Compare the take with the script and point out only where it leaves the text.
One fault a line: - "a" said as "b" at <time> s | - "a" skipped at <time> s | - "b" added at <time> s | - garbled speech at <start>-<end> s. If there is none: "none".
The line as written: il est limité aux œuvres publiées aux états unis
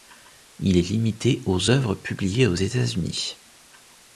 none